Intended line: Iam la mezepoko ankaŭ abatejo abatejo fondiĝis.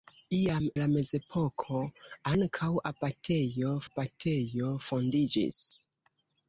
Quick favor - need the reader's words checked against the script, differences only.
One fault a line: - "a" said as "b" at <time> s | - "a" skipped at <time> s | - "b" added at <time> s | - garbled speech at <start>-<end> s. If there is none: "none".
none